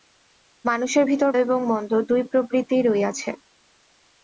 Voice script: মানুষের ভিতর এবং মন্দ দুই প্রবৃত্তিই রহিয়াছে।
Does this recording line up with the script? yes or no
yes